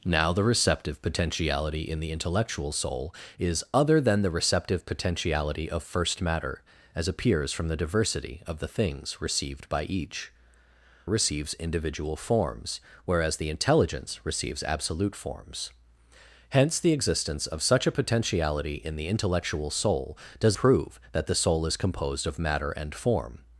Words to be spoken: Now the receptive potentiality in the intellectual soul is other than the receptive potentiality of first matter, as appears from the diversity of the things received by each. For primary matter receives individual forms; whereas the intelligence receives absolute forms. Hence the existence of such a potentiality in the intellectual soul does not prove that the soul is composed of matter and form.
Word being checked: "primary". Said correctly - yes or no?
no